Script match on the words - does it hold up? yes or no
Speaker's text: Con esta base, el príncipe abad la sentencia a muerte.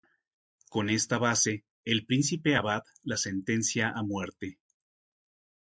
yes